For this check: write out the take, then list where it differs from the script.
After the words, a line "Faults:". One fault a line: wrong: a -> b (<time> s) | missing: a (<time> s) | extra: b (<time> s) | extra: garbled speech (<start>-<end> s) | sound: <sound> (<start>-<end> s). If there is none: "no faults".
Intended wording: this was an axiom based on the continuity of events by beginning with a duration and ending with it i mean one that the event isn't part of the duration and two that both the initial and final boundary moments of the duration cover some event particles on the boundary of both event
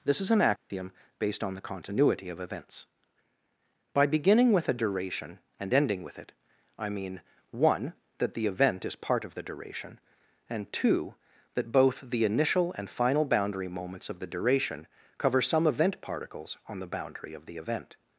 this is an axiom based on the continuity of events by beginning with a duration and ending with it i mean one that the event is part of the duration and two that both the initial and final boundary moments of the duration cover some event particles on the boundary of the event
Faults:
wrong: was -> is (0.2 s)
sound: dropout (0.6-0.7 s)
wrong: isn't -> is (8.8 s)
wrong: both -> the (17.5 s)